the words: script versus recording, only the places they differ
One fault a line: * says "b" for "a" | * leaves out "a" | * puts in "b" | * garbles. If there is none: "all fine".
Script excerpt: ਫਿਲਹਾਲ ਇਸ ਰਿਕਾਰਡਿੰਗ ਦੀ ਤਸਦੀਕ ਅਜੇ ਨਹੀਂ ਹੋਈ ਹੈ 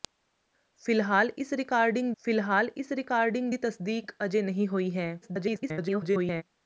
* puts in "ਫਿਲਹਾਲ ਇਸ ਰਿਕਾਰਡਿੰਗ"
* garbles